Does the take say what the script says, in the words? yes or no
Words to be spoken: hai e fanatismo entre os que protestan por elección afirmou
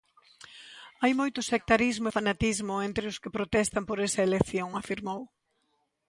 no